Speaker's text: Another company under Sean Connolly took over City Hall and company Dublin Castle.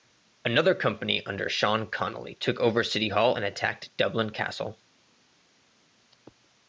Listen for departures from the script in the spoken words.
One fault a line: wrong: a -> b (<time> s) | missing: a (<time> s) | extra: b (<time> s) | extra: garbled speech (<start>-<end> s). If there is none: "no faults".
wrong: company -> attacked (3.4 s)